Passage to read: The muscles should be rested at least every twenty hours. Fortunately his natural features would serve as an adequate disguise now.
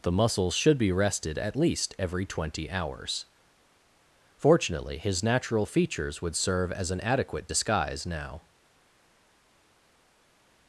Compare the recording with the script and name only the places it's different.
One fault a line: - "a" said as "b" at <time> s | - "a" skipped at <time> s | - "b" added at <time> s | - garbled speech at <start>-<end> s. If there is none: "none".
none